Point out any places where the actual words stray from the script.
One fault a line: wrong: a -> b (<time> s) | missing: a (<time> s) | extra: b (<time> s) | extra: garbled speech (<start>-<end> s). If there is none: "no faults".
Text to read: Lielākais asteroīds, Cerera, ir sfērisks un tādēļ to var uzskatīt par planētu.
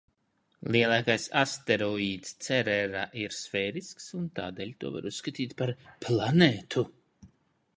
no faults